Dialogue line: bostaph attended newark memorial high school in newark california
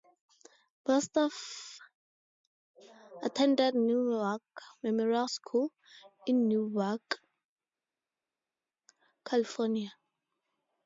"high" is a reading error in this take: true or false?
true